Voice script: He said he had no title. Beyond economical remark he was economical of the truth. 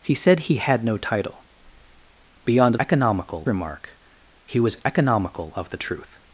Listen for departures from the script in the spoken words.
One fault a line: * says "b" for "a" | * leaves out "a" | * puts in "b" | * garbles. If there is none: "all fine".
all fine